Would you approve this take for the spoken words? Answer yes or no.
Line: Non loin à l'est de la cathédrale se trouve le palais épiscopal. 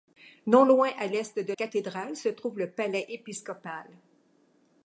no